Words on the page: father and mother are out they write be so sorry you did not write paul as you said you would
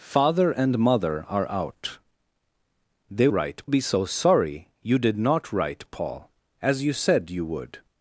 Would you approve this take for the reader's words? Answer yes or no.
yes